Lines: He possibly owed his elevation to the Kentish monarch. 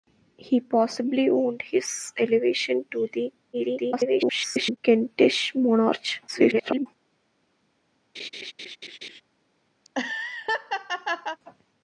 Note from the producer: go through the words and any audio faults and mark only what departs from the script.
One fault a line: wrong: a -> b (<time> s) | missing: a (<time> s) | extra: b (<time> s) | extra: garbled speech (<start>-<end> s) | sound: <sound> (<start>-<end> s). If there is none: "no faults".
extra: garbled speech (3.5-4.8 s)
extra: garbled speech (6.3-6.9 s)
sound: laugh (8.1-9.2 s)
sound: laugh (9.8-11.4 s)